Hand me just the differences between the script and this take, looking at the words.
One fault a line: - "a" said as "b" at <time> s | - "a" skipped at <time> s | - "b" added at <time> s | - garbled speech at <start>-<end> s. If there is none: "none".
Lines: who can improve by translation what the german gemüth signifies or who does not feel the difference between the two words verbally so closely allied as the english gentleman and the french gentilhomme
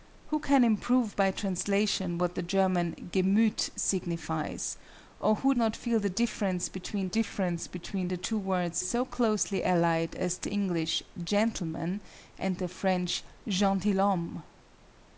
- "does" skipped at 5.5 s
- "difference between" added at 7.0 s
- "verbally" skipped at 8.8 s